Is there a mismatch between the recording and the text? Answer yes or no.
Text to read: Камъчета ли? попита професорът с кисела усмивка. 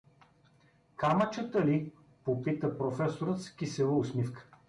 no